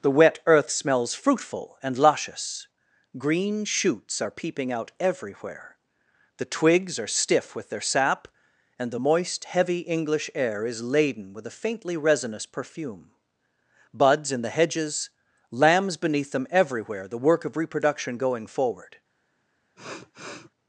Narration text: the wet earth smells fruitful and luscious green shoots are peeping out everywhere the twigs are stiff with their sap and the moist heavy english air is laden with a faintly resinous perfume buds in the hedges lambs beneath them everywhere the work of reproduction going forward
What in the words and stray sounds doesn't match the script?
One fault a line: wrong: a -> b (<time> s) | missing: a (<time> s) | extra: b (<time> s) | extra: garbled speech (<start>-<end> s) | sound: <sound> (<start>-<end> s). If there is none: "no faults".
sound: sniff (19.8-20.5 s)